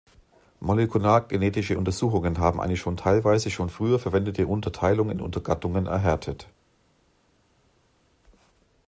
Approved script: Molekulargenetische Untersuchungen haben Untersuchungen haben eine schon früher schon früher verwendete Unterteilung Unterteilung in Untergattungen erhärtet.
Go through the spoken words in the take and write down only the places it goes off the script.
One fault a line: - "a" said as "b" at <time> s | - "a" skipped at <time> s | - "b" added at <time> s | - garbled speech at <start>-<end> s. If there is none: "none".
- "Untersuchungen haben" skipped at 2.6 s
- "früher" said as "teilweise" at 3.0 s
- "Unterteilung" skipped at 5.1 s